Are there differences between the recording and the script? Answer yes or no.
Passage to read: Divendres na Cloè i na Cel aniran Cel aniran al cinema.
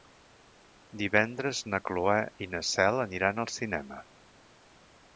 yes